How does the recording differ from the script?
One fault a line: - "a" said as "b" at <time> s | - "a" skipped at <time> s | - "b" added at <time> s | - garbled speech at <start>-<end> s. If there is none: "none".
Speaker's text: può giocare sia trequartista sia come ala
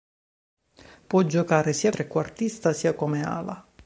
none